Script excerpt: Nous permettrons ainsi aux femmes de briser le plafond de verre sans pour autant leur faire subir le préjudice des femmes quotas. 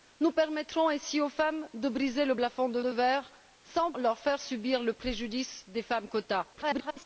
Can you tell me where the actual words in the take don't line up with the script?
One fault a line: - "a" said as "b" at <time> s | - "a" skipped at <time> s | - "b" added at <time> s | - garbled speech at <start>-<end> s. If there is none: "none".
- "de" added at 2.8 s
- "pour autant" skipped at 3.9 s
- garbled speech at 6.5-7.0 s